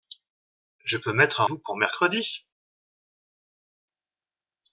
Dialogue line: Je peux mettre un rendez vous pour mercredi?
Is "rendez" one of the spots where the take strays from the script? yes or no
yes